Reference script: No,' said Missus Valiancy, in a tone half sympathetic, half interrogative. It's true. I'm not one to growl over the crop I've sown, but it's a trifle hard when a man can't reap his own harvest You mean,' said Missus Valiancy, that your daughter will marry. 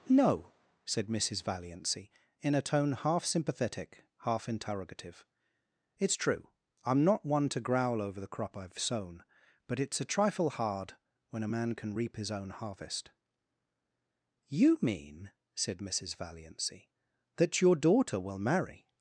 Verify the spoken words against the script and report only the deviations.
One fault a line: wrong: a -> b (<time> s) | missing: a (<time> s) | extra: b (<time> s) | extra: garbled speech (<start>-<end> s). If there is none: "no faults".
wrong: can't -> can (11.7 s)